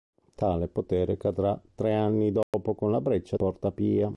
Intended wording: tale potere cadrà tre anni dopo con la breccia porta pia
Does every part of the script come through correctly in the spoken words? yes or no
yes